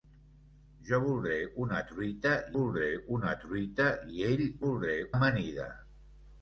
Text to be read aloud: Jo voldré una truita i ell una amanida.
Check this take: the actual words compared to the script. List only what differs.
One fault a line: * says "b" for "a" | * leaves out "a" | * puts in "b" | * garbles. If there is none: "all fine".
* puts in "voldré una truita"
* says "voldré" for "una"